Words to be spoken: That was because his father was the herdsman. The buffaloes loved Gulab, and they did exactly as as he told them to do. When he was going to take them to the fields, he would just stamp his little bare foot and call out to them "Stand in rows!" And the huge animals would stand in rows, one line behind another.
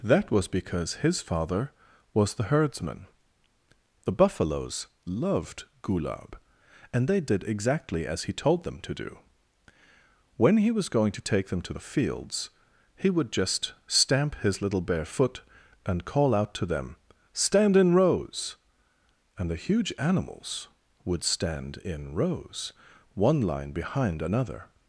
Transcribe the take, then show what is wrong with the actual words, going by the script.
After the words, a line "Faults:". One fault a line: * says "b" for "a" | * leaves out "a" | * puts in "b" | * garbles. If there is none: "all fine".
That was because his father was the herdsman. The buffaloes loved Gulab, and they did exactly as he told them to do. When he was going to take them to the fields, he would just stamp his little bare foot and call out to them "Stand in rows!" And the huge animals would stand in rows, one line behind another.
Faults:
* leaves out "as"